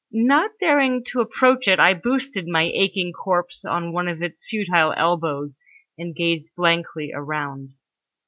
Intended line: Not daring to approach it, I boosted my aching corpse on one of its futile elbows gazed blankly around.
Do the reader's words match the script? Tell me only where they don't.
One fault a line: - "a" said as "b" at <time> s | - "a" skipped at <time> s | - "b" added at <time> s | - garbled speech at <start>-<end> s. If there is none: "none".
- "and" added at 6.0 s